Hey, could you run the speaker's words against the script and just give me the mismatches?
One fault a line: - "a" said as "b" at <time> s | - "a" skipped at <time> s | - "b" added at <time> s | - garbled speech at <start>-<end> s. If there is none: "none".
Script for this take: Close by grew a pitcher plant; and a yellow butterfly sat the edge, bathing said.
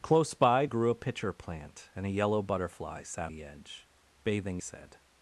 none